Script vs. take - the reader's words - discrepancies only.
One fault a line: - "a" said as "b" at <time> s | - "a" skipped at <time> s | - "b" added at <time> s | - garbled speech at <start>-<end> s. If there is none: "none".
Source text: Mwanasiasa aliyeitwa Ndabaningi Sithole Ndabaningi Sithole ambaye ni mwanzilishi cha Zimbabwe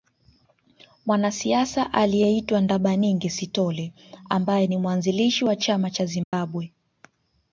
- "Ndabaningi Sithole" skipped at 3.9 s
- "wa chama" added at 5.4 s